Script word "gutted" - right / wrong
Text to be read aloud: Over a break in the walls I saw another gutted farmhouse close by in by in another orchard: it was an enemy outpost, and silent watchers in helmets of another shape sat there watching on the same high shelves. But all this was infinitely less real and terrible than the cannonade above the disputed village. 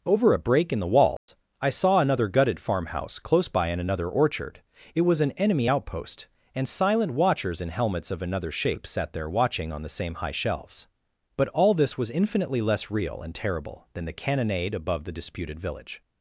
right